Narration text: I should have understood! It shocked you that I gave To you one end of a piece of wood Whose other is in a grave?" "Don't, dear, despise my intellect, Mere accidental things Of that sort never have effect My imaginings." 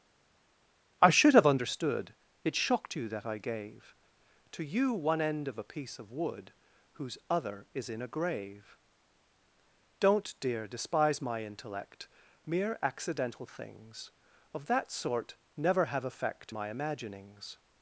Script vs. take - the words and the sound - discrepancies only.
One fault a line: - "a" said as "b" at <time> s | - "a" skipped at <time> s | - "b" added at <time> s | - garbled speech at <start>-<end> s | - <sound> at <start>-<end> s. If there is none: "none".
none